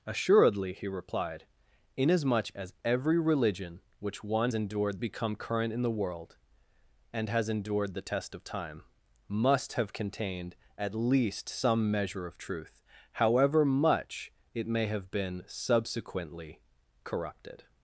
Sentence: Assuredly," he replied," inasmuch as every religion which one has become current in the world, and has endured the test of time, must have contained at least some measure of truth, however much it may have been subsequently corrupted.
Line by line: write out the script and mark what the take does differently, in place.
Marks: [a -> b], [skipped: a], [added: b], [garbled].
Assuredly," he replied," inasmuch as every religion which one [has -> endured] become current in the world, and has endured the test of time, must have contained at least some measure of truth, however much it may have been subsequently corrupted.